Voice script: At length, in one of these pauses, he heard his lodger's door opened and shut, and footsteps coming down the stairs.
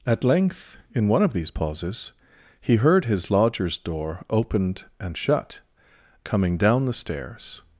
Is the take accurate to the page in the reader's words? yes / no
no